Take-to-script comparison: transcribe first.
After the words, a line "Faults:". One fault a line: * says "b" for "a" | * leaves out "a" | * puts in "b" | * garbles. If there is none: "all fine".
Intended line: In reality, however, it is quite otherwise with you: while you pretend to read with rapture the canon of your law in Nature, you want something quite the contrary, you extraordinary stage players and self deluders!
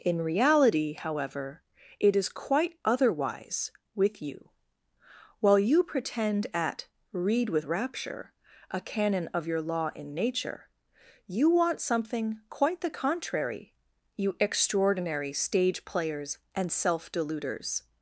In reality, however, it is quite otherwise with you: while you pretend at read with rapture a canon of your law in Nature, you want something quite the contrary, you extraordinary stage players and self deluders!
Faults:
* says "at" for "to"
* says "a" for "the"